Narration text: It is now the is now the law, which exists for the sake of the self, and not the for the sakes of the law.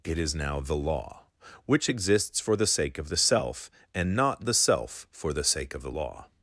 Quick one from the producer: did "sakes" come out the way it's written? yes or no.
no